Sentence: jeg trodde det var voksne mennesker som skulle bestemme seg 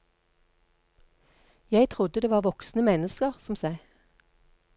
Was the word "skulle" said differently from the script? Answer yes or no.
yes